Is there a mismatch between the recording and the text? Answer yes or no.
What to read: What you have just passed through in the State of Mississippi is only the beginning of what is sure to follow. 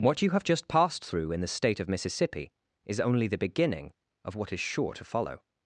no